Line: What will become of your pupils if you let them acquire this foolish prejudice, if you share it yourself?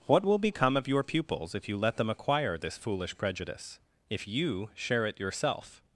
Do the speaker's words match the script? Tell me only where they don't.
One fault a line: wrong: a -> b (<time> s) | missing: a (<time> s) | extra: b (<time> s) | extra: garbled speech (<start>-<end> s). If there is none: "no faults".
no faults